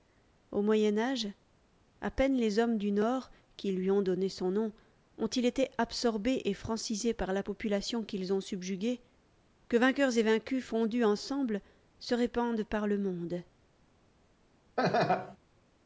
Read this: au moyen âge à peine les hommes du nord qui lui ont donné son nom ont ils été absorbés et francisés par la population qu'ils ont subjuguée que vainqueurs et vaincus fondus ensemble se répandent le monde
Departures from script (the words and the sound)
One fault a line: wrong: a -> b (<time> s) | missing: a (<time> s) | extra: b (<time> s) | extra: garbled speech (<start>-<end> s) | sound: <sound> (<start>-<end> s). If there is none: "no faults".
extra: par (12.6 s)
sound: laugh (14.8-15.4 s)